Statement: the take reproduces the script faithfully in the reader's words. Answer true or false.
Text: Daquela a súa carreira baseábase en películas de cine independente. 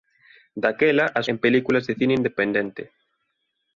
false